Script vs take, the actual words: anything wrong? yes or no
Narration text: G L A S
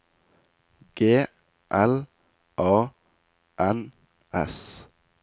yes